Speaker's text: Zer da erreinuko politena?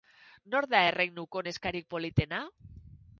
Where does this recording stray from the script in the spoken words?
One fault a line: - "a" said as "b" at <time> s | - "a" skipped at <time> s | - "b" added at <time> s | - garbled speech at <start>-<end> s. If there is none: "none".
- "Zer" said as "Nor" at 0.5 s
- "neskarik" added at 1.5 s